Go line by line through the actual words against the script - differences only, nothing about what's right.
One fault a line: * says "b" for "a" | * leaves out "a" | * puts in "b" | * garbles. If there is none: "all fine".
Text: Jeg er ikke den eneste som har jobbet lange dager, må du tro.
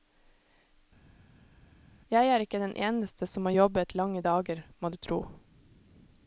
all fine